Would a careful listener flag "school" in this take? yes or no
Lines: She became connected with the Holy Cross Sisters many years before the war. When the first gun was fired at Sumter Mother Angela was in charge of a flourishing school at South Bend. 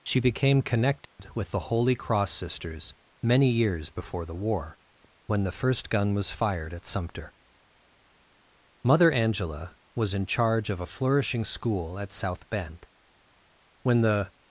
no